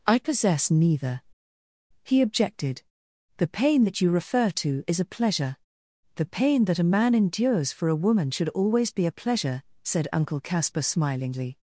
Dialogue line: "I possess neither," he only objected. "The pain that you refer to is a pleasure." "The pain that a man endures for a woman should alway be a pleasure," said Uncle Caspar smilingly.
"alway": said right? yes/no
no